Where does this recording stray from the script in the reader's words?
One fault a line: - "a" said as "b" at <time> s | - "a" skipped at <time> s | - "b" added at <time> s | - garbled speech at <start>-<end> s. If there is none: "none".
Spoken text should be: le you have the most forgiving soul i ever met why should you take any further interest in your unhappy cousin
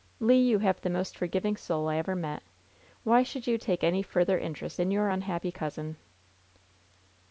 none